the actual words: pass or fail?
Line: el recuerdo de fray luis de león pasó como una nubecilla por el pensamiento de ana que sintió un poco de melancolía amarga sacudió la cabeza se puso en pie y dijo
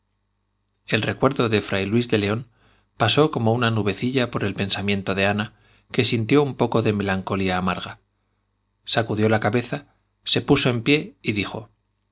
pass